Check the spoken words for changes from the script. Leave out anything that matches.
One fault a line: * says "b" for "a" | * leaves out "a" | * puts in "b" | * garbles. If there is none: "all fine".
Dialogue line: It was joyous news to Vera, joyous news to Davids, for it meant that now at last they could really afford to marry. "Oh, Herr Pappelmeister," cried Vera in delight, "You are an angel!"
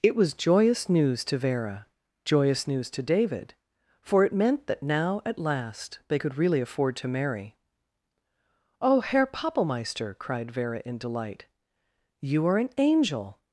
* says "David" for "Davids"